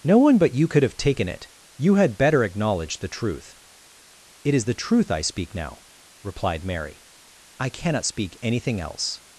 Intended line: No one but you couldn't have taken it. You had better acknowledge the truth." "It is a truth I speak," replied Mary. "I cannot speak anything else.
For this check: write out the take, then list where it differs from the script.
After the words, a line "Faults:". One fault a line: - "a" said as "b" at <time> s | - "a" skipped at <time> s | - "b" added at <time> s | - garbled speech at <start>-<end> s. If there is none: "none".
No one but you could have taken it. You had better acknowledge the truth." "It is the truth I speak now," replied Mary. "I cannot speak anything else.
Faults:
- "couldn't" said as "could" at 0.7 s
- "a" said as "the" at 4.6 s
- "now" added at 5.5 s